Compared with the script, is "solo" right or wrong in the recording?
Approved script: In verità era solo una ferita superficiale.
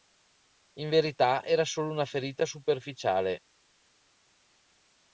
right